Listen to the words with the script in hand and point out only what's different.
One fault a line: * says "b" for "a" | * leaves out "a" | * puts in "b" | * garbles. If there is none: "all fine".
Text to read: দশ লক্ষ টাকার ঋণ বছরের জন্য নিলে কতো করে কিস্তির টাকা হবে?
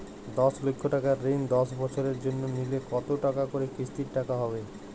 * puts in "দশ"
* puts in "টাকা"